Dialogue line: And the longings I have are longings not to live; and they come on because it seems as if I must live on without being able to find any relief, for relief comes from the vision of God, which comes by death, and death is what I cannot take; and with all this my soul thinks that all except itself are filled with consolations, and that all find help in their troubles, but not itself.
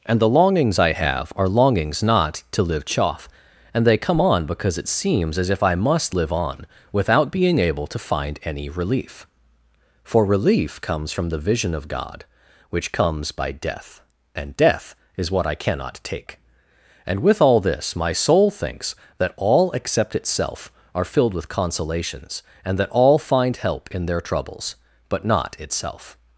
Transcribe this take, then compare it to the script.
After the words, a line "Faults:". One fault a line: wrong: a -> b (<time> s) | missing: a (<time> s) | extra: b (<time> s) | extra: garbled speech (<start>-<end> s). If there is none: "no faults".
And the longings I have are longings not to live; chaff and they come on because it seems as if I must live on without being able to find any relief, for relief comes from the vision of God, which comes by death, and death is what I cannot take; and with all this my soul thinks that all except itself are filled with consolations, and that all find help in their troubles, but not itself.
Faults:
extra: chaff (2.9 s)